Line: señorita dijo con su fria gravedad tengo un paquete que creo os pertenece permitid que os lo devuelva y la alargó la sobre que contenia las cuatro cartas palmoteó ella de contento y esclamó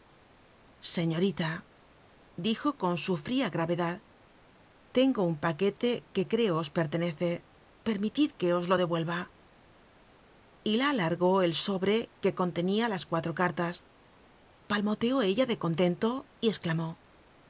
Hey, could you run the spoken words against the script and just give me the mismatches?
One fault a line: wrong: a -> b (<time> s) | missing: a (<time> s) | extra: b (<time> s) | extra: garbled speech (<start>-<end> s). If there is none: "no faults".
wrong: la -> el (11.4 s)